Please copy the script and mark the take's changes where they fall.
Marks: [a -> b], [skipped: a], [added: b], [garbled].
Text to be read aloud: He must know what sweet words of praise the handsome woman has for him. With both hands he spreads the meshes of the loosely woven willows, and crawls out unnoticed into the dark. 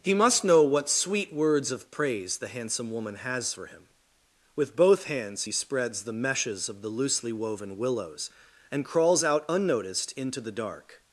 He must know what sweet words of praise the handsome woman has for him. With both hands he spreads the meshes of the loosely woven willows, and crawls out unnoticed into the dark.